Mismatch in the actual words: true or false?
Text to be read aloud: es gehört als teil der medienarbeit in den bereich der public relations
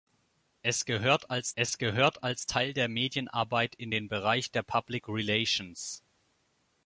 true